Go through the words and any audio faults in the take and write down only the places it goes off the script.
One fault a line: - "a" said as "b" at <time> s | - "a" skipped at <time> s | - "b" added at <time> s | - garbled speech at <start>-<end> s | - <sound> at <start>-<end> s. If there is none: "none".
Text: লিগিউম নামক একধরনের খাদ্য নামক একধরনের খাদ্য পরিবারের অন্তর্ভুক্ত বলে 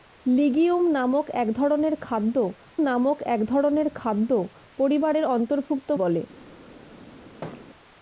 - thud at 7.4-7.7 s